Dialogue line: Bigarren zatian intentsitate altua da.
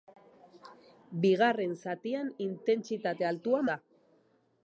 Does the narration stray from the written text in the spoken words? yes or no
no